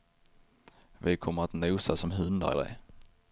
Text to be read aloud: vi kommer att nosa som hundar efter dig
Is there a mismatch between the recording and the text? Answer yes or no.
yes